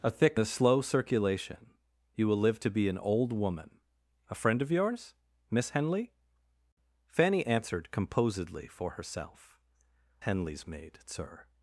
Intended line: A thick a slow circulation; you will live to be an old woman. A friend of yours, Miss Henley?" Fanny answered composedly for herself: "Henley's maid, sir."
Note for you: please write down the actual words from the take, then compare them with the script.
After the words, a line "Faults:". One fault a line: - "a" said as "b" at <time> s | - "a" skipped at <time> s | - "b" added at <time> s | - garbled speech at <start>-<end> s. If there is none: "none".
A thick a slow circulation; you will live to be an old woman. A friend of yours, Miss Henley?" Fanny answered composedly for herself: "Henley's maid, sir."
Faults:
none